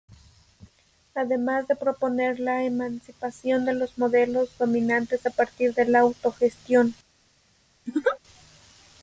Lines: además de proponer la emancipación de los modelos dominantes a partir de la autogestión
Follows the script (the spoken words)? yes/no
yes